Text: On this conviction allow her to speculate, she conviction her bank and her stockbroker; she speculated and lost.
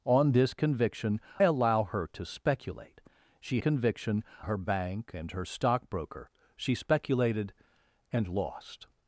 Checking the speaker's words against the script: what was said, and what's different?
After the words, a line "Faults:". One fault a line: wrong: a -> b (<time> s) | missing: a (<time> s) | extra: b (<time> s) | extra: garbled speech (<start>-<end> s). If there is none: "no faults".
On this conviction allow her to speculate, she conviction her bank and her stockbroker; she speculated and lost.
Faults:
no faults